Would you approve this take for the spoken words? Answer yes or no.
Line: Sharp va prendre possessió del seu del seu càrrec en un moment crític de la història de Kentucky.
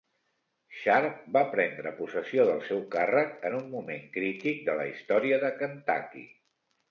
no